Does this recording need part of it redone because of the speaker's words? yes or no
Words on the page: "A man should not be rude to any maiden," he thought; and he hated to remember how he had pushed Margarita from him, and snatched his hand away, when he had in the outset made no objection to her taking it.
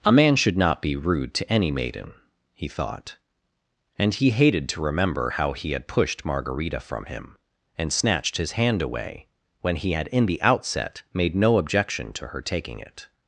no